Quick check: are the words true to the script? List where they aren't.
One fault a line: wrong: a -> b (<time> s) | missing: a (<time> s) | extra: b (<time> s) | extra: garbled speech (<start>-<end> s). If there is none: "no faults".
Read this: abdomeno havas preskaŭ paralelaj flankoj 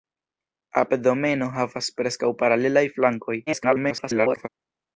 extra: garbled speech (3.5-4.5 s)